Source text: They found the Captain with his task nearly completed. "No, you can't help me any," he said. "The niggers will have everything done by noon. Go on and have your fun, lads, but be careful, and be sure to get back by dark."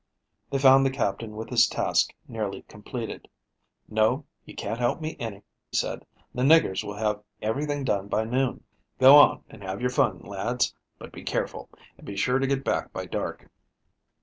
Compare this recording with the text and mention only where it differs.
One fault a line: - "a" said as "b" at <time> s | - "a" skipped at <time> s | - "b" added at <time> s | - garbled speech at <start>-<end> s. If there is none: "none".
- "he" skipped at 5.4 s